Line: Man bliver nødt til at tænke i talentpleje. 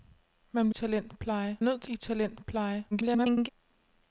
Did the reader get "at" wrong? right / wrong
wrong